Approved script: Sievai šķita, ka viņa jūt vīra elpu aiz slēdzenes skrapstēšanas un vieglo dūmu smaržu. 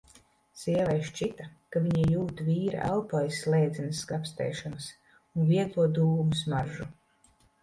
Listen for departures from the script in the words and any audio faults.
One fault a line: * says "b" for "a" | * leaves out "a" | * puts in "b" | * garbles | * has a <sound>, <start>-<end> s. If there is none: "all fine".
all fine